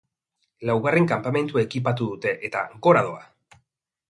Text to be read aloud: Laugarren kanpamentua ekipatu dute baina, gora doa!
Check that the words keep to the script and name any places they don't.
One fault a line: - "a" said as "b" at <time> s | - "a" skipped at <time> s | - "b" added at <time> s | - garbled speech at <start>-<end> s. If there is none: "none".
- "baina" said as "eta" at 2.5 s